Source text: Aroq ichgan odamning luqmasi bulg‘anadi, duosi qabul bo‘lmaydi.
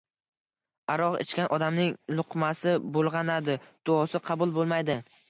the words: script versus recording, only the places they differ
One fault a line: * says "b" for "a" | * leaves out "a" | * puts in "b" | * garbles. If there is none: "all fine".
all fine